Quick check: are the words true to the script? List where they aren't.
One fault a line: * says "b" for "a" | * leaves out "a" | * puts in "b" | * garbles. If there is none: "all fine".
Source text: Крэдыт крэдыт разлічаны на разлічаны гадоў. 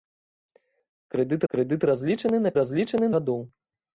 all fine